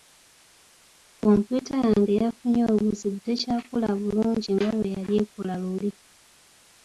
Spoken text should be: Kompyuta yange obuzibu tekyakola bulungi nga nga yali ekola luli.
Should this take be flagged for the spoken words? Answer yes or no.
yes